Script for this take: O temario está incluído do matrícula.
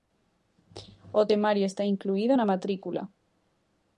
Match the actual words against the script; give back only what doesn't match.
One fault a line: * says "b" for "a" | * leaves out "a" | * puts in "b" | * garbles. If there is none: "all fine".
* says "na" for "do"